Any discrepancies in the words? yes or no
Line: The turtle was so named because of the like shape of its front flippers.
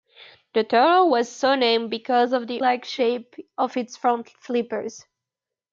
no